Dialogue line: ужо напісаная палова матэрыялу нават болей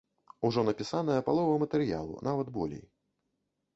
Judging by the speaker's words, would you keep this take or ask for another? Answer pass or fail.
pass